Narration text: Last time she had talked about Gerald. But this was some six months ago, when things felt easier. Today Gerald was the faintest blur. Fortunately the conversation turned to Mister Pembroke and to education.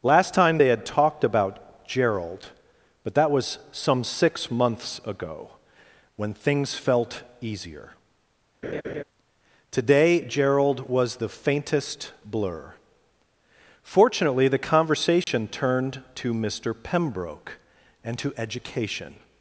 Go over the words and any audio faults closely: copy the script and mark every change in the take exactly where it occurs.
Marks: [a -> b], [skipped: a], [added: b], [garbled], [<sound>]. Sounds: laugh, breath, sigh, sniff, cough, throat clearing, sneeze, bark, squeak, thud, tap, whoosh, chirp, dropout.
Last time [she -> they] had talked about Gerald. But [this -> that] was some six months ago, when things felt easier. [laugh] Today Gerald was the faintest blur. Fortunately the conversation [dropout] turned to Mister Pembroke and to education.